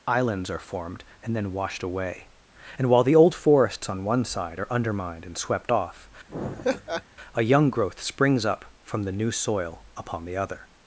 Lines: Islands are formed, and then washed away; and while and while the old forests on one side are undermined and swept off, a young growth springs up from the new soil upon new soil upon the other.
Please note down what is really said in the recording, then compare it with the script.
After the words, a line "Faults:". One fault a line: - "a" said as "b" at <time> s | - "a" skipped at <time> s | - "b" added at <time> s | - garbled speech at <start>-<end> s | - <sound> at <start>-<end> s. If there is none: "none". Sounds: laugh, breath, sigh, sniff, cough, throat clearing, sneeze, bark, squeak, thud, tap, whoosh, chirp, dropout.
Islands are formed, and then washed away; and while the old forests on one side are undermined and swept off, a young growth springs up from the new soil upon the other.
Faults:
- "and while" skipped at 3.0 s
- laugh at 6.3-7.0 s
- "new soil upon" skipped at 10.2 s